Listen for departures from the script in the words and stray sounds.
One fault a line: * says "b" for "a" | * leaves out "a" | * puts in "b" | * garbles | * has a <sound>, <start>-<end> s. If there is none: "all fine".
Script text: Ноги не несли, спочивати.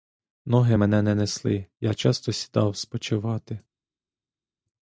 * puts in "мене"
* puts in "я часто сідав"